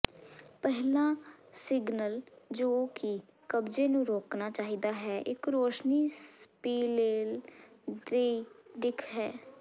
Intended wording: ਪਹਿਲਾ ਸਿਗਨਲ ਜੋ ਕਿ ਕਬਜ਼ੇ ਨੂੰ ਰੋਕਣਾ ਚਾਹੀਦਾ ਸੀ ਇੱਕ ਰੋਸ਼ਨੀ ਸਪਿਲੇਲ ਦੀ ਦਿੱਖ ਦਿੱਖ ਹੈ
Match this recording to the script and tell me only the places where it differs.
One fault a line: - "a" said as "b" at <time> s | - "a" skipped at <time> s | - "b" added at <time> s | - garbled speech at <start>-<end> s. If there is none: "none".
- "ਸੀ" said as "ਹੈ" at 4.9 s
- "ਦਿੱਖ" skipped at 9.0 s